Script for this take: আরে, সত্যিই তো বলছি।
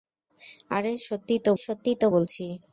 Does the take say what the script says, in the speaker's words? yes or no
no